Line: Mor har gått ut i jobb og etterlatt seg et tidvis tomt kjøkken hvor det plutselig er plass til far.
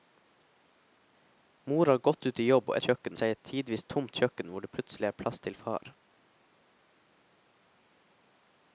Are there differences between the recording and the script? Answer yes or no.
yes